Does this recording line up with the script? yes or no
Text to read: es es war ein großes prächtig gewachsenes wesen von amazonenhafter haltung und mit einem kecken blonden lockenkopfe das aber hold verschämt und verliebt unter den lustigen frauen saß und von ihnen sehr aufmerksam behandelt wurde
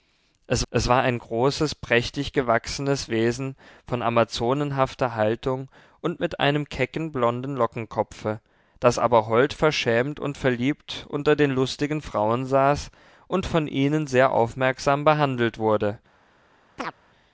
yes